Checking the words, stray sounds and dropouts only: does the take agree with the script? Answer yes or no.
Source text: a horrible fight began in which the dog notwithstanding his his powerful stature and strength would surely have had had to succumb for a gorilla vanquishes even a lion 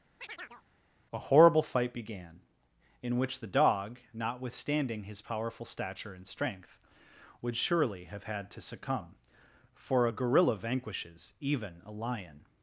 no